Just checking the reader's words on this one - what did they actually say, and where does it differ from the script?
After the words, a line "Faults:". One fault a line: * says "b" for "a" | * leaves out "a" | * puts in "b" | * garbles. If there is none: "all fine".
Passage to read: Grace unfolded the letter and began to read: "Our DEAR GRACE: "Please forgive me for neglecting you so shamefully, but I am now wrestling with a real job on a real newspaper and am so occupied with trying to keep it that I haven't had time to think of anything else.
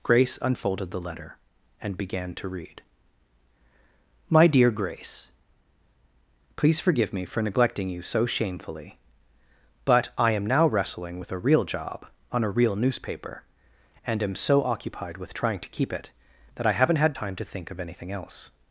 Grace unfolded the letter and began to read: "MY DEAR GRACE: "Please forgive me for neglecting you so shamefully, but I am now wrestling with a real job on a real newspaper and am so occupied with trying to keep it that I haven't had time to think of anything else.
Faults:
* says "MY" for "Our"